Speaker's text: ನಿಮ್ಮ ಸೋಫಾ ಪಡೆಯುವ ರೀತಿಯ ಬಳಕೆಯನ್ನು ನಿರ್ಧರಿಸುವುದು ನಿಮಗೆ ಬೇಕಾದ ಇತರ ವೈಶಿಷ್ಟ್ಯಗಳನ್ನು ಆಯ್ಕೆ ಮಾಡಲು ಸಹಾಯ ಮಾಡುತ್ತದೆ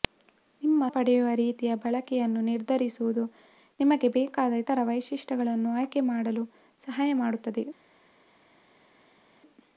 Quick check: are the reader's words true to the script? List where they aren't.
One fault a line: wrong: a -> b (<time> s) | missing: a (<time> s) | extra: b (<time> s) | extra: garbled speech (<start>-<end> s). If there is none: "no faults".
missing: ಸೋಫಾ (0.8 s)